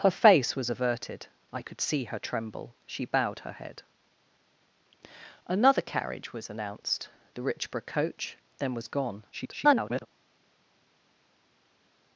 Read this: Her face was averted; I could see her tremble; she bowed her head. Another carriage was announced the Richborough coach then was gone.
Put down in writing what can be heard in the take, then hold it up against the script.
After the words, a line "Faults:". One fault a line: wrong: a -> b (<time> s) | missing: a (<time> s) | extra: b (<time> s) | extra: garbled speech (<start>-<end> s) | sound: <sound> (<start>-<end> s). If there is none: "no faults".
Her face was averted; I could see her tremble; she bowed her head. Another carriage was announced the Richborough coach then was gone. [garbled]
Faults:
extra: garbled speech (9.3-10.1 s)